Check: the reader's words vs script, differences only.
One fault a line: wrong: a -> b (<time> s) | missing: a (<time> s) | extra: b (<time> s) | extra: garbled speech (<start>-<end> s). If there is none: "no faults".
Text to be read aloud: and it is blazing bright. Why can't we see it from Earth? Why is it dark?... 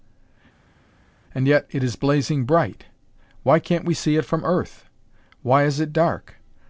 extra: yet (1.5 s)